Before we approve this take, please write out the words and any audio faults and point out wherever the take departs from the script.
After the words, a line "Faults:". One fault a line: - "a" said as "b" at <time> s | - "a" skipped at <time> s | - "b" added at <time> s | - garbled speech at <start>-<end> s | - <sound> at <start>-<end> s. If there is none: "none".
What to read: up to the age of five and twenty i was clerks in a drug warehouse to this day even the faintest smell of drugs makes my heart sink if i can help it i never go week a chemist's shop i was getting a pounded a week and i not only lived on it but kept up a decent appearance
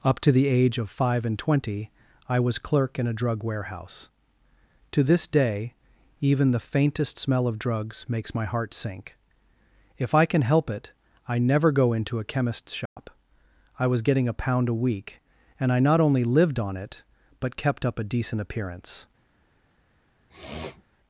up to the age of five and twenty i was clerk in a drug warehouse to this day even the faintest smell of drugs makes my heart sink if i can help it i never go into a chemist's shop i was getting a pound a week and i not only lived on it but kept up a decent appearance
Faults:
- "clerks" said as "clerk" at 2.6 s
- "week" said as "into" at 11.9 s
- dropout at 12.9-13.0 s
- "pounded" said as "pound" at 14.3 s
- sniff at 20.3-20.8 s